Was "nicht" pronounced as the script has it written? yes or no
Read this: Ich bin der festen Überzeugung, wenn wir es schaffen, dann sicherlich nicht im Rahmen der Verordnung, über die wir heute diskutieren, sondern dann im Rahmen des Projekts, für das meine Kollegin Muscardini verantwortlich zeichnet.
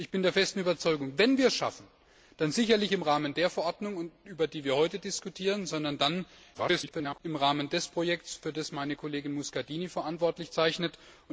no